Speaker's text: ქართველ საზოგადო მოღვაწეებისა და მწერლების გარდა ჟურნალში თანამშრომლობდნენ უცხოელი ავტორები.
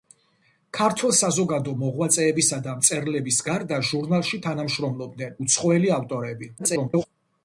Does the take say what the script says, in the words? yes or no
no